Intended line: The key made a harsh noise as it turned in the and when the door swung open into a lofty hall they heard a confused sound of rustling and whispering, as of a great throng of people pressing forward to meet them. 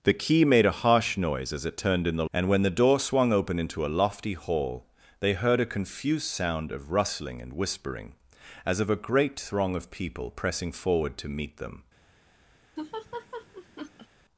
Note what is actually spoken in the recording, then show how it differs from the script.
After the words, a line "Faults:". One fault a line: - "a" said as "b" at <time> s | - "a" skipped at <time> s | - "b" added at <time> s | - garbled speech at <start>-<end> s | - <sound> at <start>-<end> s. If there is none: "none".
The key made a harsh noise as it turned in the and when the door swung open into a lofty hall they heard a confused sound of rustling and whispering, as of a great throng of people pressing forward to meet them.
Faults:
- laugh at 12.8-14.1 s